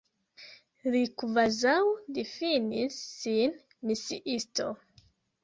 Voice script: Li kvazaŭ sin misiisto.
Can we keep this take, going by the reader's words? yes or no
no